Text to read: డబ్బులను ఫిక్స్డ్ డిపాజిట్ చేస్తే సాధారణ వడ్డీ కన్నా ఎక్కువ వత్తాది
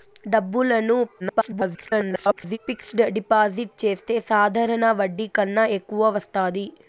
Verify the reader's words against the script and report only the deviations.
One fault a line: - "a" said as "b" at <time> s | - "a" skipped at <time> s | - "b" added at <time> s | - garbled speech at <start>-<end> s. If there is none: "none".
- garbled speech at 1.2-2.6 s